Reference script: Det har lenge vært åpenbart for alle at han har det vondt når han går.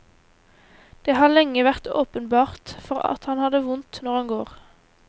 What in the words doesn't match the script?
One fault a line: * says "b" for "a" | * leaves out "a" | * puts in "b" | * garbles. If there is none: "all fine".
* leaves out "alle"